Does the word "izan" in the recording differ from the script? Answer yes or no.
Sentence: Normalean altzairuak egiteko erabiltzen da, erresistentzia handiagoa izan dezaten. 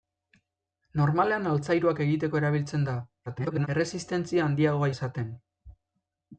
yes